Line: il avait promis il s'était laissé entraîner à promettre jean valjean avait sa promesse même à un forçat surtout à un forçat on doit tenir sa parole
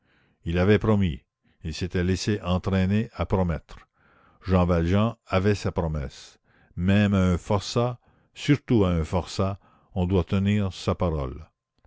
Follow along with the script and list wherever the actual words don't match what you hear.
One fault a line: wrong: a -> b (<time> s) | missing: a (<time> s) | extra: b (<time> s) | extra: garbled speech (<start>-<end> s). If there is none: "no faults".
no faults